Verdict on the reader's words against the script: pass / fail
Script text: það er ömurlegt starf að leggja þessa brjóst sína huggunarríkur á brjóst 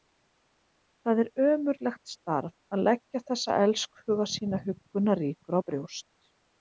fail